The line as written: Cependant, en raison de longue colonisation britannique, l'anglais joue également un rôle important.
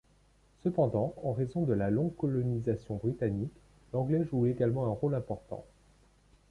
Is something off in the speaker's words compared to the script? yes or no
yes